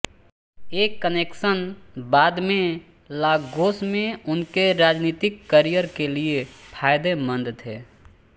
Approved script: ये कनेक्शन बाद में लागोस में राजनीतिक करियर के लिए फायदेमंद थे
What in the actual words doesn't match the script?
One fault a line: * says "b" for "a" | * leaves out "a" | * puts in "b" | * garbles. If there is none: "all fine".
* puts in "उनके"